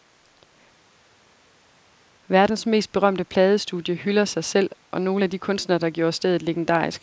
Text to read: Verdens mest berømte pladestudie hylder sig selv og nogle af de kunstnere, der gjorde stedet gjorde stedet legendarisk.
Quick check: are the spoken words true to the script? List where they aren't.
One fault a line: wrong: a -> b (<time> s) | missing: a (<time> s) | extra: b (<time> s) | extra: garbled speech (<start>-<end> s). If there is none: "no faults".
missing: gjorde stedet (6.4 s)